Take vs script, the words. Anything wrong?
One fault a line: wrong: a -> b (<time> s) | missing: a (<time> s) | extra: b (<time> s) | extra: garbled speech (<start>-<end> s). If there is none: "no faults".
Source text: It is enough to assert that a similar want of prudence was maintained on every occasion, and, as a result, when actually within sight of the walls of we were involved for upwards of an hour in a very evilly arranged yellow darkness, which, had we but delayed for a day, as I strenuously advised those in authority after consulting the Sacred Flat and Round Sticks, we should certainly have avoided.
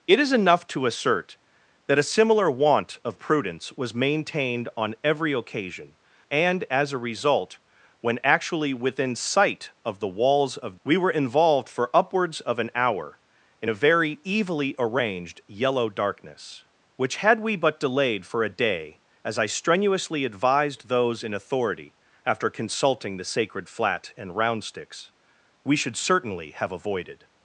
no faults